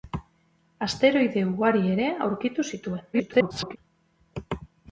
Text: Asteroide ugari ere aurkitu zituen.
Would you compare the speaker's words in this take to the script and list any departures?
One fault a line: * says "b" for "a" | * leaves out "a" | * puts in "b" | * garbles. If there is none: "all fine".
* garbles